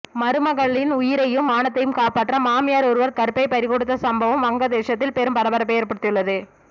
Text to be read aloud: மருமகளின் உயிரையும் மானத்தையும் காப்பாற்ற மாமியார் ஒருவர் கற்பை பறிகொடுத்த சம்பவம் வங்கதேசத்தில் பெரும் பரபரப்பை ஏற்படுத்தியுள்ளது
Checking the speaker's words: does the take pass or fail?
pass